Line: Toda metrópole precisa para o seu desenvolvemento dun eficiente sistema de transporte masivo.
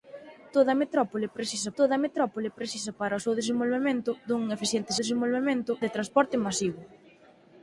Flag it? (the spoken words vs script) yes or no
yes